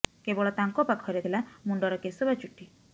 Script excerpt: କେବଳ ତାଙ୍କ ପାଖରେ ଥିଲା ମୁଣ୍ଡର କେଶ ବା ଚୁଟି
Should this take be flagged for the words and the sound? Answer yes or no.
no